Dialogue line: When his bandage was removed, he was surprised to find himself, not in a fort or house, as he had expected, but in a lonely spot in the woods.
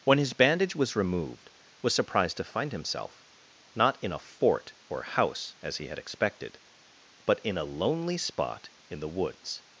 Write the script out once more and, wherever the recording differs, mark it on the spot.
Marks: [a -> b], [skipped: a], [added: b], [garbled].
When his bandage was removed, [skipped: he] was surprised to find himself, not in a fort or house, as he had expected, but in a lonely spot in the woods.